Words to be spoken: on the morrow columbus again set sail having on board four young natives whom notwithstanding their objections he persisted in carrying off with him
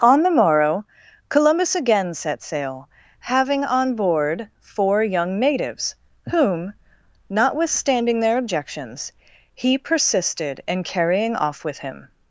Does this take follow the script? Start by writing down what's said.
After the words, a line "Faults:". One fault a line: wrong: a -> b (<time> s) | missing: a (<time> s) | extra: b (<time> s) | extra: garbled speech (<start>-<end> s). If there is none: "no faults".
on the morrow columbus again set sail having on board four young natives whom notwithstanding their objections he persisted in carrying off with him
Faults:
no faults